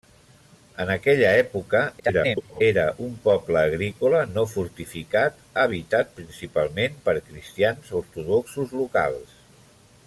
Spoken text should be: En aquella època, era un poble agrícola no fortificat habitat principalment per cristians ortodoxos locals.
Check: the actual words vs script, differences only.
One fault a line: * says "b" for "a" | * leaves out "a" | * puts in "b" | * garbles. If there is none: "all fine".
* garbles